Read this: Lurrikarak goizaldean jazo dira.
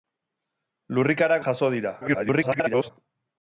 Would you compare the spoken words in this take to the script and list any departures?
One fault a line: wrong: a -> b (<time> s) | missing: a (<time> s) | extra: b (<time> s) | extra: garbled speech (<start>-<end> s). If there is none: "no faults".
missing: goizaldean (1.4 s)
extra: garbled speech (2.0-2.9 s)